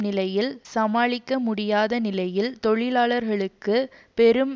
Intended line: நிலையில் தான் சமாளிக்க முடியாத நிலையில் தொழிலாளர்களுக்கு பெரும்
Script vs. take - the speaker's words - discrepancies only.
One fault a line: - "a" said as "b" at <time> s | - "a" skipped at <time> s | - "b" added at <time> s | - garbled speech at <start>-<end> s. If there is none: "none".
- "தான்" skipped at 0.5 s